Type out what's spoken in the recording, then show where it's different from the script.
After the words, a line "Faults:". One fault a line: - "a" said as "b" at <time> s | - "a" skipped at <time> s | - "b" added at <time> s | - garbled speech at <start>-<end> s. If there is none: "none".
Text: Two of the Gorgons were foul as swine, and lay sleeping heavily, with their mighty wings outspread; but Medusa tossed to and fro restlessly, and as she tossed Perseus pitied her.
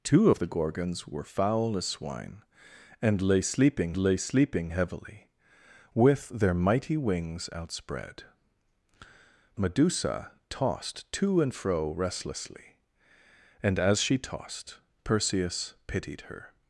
Two of the Gorgons were foul as swine, and lay sleeping lay sleeping heavily, with their mighty wings outspread; Medusa tossed to and fro restlessly, and as she tossed Perseus pitied her.
Faults:
- "lay sleeping" added at 4.0 s
- "but" skipped at 8.2 s